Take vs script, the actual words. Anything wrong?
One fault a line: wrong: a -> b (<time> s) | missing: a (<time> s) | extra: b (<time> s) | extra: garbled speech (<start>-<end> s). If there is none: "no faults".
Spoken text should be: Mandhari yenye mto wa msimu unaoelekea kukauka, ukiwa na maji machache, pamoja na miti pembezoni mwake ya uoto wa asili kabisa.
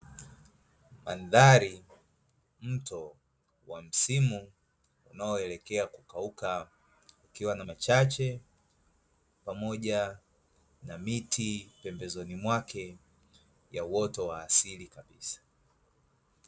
missing: yenye (1.8 s)
missing: maji (7.6 s)